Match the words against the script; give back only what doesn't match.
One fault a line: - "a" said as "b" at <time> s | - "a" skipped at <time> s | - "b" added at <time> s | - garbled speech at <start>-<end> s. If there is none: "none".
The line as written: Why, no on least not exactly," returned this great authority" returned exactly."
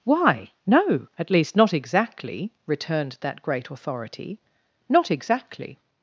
- "on" said as "at" at 1.2 s
- "this" said as "that" at 3.2 s
- "returned" said as "not" at 4.9 s